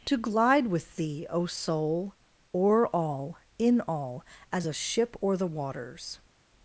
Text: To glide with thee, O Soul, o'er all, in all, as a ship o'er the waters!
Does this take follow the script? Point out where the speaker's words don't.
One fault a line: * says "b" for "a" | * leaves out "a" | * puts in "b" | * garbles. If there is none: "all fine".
all fine